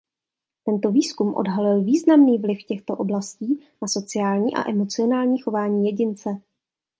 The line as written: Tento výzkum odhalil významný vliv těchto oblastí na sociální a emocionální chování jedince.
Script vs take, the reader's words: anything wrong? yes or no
no